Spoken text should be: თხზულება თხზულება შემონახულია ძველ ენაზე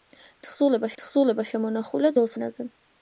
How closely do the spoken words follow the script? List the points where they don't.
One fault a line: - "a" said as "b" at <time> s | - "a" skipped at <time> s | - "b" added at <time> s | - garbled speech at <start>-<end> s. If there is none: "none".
none